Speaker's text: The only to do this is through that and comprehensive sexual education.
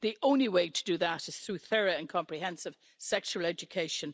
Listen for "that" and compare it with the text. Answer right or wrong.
wrong